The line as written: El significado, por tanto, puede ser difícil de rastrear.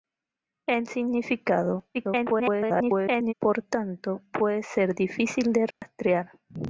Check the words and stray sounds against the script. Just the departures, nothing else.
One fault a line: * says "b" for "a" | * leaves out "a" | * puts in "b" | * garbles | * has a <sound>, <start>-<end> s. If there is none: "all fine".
* garbles
* has a dropout, 5.7-5.8 s